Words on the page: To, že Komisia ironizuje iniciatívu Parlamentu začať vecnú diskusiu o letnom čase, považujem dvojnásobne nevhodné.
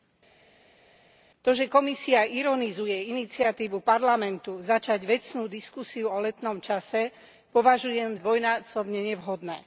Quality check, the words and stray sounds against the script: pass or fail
pass